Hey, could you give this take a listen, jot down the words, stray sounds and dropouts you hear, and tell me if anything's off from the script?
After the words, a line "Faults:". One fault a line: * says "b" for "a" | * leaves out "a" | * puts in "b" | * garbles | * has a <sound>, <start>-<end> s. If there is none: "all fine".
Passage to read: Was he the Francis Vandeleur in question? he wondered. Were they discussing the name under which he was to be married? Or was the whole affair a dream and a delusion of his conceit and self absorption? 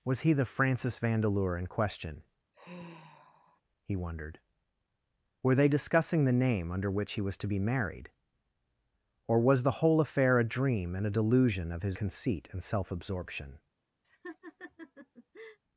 Was he the Francis Vandeleur in question? he wondered. Were they discussing the name under which he was to be married? Or was the whole affair a dream and a delusion of his conceit and self absorption?
Faults:
* has a sigh, 2.5-3.6 s
* has a laugh, 14.0-15.6 s